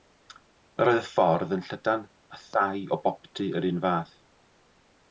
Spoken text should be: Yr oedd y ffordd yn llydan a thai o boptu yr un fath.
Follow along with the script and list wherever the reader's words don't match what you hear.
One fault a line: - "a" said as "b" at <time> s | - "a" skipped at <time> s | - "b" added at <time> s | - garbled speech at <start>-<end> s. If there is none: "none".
none